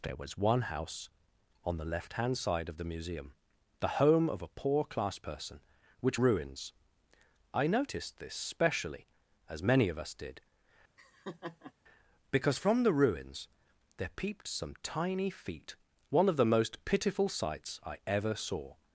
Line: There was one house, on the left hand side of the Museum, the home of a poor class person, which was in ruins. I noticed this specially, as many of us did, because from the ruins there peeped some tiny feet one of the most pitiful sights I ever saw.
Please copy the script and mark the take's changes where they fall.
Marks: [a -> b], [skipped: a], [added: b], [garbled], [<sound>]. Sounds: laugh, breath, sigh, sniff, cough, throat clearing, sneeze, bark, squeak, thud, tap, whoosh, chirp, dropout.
There was one house, on the left hand side of the Museum, the home of a poor class person, which [skipped: was in] ruins. I noticed this specially, as many of us did, [laugh] because from the ruins there peeped some tiny feet one of the most pitiful sights I ever saw.